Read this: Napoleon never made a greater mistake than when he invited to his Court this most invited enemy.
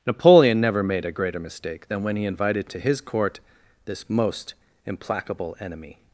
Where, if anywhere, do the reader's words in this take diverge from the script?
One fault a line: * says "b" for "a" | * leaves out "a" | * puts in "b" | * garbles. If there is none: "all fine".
* says "implacable" for "invited"